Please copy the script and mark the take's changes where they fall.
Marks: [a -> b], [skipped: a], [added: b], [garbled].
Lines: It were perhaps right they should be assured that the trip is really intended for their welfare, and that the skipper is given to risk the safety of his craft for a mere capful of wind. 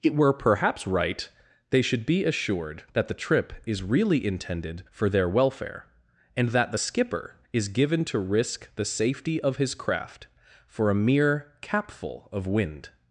It were perhaps right they should be assured that the trip is really intended for their welfare, and that the skipper is given to risk the safety of his craft for a mere capful of wind.